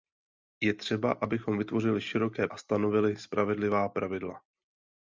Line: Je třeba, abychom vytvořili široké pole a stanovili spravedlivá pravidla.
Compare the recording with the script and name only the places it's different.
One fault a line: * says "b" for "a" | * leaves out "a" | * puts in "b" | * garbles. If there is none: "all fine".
* leaves out "pole"